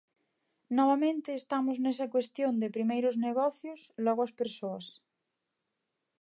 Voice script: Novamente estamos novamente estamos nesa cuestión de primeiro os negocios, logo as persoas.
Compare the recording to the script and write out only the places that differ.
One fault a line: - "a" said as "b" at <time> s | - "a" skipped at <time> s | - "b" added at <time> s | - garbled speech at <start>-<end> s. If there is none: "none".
- "novamente estamos" skipped at 1.8 s